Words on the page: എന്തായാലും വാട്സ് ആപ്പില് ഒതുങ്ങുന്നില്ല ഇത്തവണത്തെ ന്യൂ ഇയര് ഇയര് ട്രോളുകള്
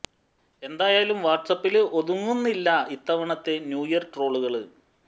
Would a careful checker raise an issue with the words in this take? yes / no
yes